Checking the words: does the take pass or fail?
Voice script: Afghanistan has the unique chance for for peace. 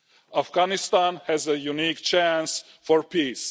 fail